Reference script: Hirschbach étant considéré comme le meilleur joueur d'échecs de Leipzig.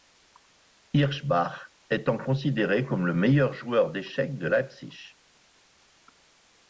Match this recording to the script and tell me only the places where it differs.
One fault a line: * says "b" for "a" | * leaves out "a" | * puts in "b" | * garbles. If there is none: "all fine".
all fine